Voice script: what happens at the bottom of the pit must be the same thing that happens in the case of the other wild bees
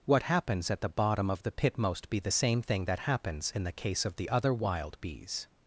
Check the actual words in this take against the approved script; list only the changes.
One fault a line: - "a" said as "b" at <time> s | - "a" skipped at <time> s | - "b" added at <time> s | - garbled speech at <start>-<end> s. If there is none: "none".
- "must" said as "most" at 1.8 s